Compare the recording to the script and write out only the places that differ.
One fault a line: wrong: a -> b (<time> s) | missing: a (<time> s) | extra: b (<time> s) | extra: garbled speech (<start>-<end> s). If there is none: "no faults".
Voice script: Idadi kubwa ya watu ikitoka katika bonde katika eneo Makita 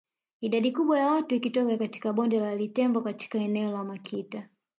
extra: la Litembo (2.4 s)
extra: la (3.7 s)